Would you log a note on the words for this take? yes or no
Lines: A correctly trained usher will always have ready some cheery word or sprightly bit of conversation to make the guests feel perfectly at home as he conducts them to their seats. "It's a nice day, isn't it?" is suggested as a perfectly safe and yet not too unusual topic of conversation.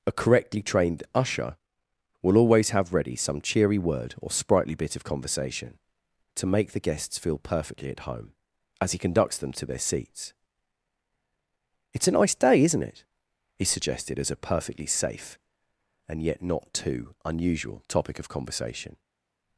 yes